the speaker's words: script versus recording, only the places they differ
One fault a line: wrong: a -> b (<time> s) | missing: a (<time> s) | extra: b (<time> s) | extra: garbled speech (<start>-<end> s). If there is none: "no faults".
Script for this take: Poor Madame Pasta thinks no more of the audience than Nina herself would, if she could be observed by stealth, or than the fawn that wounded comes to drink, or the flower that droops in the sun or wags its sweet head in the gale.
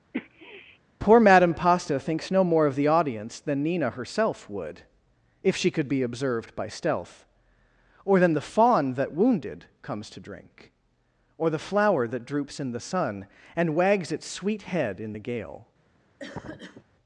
wrong: or -> and (13.6 s)